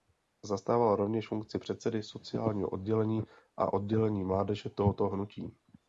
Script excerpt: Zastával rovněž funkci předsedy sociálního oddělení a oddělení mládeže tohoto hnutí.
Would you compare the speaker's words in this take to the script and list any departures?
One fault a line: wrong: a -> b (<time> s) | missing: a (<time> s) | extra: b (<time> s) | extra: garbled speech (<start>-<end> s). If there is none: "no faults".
no faults